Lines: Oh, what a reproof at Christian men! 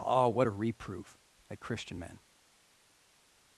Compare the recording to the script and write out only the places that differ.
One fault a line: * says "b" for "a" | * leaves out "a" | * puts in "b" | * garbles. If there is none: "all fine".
all fine